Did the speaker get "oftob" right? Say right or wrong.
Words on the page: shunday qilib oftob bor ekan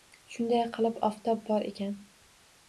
right